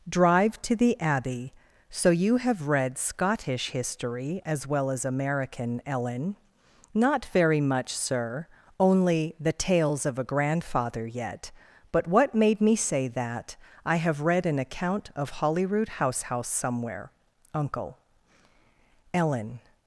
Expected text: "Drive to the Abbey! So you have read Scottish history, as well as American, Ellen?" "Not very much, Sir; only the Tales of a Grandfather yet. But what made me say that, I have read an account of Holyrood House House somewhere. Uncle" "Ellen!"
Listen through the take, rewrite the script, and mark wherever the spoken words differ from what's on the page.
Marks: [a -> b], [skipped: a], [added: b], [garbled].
"Drive to the Abbey! So you have read Scottish history, as well as American, Ellen?" "Not very much, Sir; only the Tales of a Grandfather yet. But what made me say that, I have read an account of Holyrood House House somewhere. Uncle" "Ellen!"